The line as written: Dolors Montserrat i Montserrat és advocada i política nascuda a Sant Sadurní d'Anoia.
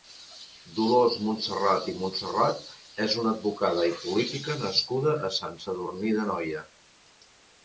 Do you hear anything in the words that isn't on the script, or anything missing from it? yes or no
yes